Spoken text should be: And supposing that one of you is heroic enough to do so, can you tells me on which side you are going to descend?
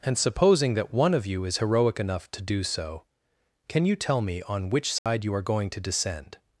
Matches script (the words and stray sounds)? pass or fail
fail